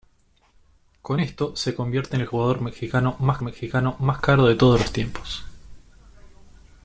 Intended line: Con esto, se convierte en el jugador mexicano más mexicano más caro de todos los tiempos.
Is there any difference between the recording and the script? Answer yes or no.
no